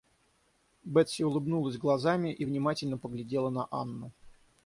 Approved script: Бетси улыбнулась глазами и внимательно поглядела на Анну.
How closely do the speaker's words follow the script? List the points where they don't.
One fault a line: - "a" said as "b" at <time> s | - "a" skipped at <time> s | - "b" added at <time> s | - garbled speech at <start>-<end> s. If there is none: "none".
none